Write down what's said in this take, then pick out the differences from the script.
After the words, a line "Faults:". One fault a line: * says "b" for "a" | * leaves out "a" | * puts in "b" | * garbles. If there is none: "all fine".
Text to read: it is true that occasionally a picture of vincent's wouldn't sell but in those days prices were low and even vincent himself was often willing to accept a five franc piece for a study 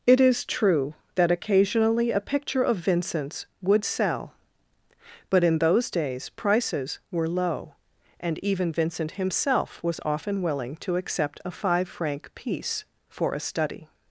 it is true that occasionally a picture of vincent's would sell but in those days prices were low and even vincent himself was often willing to accept a five franc piece for a study
Faults:
* says "would" for "wouldn't"